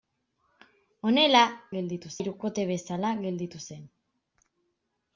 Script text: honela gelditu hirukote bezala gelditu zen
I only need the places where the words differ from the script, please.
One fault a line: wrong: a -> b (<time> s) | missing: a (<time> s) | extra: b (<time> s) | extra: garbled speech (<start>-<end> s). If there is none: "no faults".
no faults